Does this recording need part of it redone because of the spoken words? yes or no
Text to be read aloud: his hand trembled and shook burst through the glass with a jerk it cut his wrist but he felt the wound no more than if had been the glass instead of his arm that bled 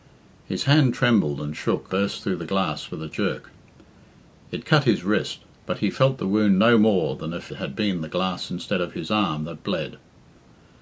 no